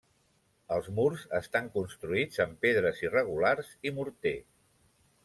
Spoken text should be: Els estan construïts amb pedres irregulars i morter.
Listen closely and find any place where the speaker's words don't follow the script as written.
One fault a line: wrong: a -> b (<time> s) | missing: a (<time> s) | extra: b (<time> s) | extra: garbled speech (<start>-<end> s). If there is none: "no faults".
extra: murs (1.0 s)